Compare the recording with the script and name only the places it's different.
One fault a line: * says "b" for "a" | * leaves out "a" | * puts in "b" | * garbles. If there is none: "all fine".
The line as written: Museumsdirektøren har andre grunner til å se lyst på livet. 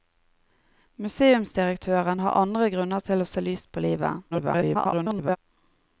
* garbles